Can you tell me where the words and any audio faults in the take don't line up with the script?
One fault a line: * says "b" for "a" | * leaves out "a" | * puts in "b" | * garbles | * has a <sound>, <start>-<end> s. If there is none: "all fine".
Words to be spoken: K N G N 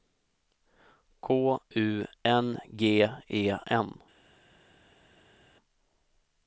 * puts in "U"
* puts in "E"